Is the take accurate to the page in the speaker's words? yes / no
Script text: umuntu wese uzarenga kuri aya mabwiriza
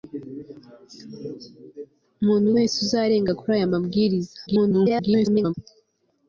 no